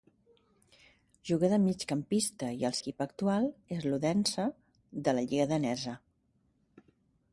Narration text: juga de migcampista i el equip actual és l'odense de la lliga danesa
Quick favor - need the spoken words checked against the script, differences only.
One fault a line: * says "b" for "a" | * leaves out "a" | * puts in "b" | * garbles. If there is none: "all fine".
all fine